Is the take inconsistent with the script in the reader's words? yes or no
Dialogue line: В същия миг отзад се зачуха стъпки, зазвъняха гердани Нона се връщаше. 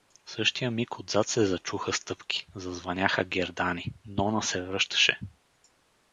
no